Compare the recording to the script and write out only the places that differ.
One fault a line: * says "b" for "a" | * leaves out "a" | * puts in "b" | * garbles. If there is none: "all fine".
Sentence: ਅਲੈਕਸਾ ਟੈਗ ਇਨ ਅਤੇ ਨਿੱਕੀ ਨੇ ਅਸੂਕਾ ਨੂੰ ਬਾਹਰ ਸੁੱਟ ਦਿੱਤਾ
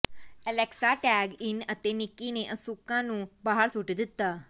all fine